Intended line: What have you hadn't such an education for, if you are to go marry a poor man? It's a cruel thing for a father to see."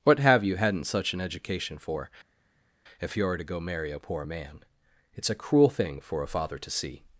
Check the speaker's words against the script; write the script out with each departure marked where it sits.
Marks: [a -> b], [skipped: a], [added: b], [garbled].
What have you hadn't such an education for, if you are to go marry a poor man? It's a cruel thing for a father to see."